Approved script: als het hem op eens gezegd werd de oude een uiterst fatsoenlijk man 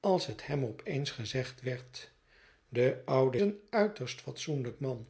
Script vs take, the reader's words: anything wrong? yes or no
no